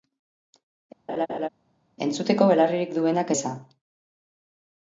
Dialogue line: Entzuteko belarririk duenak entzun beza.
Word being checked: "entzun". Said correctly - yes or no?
no